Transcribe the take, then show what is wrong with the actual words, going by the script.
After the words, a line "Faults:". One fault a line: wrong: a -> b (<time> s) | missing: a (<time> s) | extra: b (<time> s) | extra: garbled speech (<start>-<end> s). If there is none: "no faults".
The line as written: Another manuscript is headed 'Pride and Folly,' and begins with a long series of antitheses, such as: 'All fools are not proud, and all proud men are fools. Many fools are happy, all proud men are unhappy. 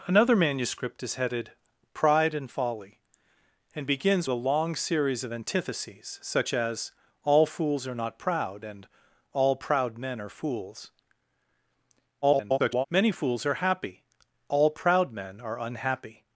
Another manuscript is headed 'Pride and Folly,' and begins a long series of antitheses, such as: 'All fools are not proud, and all proud men are fools. [garbled] Many fools are happy, all proud men are unhappy.
Faults:
missing: with (4.3 s)
extra: garbled speech (12.2-12.9 s)